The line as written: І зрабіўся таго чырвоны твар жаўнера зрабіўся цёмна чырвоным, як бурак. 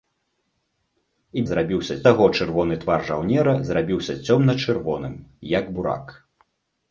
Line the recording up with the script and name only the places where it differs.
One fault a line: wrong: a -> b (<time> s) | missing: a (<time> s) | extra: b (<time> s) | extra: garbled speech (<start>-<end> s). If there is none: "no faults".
no faults